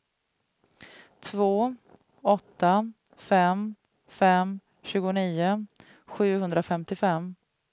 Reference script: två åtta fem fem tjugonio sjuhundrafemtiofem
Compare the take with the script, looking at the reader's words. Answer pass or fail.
pass